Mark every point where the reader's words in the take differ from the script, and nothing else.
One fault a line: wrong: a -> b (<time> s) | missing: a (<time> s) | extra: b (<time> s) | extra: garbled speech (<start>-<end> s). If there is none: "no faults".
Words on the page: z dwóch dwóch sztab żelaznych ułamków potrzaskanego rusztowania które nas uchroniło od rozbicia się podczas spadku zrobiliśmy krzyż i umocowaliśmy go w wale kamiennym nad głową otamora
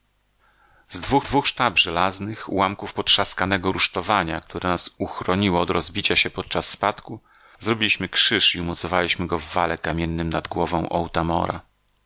no faults